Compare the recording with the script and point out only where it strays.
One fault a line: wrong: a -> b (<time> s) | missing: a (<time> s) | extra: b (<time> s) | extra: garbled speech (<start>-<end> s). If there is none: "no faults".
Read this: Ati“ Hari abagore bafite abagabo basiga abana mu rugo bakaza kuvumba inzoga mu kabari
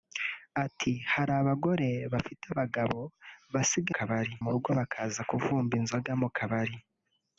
wrong: abana -> kabari (4.0 s)